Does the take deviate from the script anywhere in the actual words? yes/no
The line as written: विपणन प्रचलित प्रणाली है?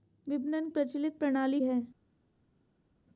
no